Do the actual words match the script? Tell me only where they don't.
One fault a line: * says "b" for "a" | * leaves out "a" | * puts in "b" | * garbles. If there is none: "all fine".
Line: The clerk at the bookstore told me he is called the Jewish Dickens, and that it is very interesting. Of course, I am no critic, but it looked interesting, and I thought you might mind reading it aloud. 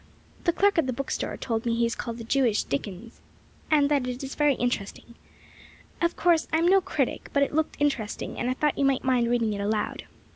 all fine